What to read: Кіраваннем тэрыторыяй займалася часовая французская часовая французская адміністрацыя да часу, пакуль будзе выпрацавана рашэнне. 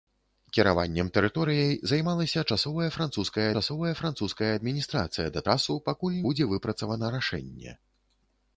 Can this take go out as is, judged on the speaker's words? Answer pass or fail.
pass